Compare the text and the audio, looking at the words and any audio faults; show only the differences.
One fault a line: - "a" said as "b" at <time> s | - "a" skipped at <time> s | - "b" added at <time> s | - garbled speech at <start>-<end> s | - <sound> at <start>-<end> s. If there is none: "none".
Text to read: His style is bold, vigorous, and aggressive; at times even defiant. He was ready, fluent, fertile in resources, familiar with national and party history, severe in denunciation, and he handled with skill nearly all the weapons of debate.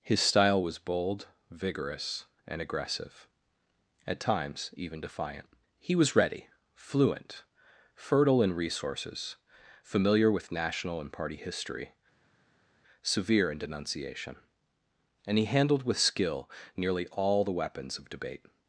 - "is" said as "was" at 0.6 s